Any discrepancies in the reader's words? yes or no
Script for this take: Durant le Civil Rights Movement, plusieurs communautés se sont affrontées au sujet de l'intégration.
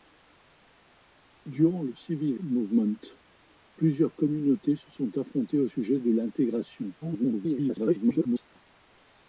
yes